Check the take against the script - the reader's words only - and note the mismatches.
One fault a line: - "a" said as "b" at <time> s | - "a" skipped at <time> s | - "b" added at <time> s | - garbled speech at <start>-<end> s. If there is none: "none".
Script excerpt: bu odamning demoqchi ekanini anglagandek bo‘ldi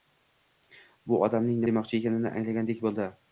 none